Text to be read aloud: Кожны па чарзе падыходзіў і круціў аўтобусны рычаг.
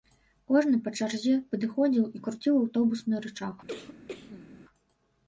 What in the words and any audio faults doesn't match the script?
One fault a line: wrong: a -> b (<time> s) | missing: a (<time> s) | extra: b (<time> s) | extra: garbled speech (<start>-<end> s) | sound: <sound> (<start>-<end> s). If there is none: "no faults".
sound: cough (3.7-4.5 s)